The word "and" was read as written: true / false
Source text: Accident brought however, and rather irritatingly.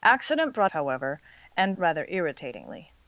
true